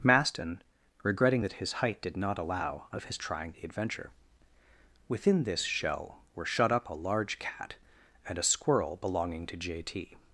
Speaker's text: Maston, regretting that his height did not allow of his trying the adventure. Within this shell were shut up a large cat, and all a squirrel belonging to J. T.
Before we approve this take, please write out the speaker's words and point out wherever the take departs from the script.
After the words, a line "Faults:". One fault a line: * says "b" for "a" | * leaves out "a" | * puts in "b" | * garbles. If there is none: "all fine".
Maston, regretting that his height did not allow of his trying the adventure. Within this shell were shut up a large cat, and a squirrel belonging to J. T.
Faults:
* leaves out "all"